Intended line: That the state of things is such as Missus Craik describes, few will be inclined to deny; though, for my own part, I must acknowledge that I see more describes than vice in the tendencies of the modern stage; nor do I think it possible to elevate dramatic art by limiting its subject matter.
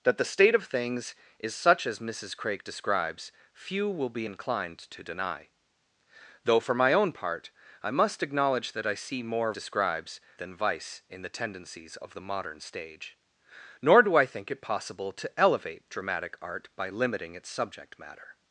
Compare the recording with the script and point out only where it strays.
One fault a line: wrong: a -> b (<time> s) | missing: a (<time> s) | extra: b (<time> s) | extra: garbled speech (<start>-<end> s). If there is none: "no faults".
no faults